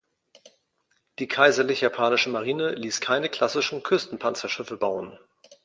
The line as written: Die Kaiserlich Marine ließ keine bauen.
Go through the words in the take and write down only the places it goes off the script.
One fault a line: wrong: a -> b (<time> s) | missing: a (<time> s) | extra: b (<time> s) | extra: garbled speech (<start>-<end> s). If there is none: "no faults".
extra: Japanische (1.8 s)
extra: klassischen Küstenpanzerschiffe (3.3 s)